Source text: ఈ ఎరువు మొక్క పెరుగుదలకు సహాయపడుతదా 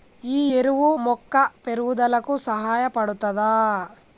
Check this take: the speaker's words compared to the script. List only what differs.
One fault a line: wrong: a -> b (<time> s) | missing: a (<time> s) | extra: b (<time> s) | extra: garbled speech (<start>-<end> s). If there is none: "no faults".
no faults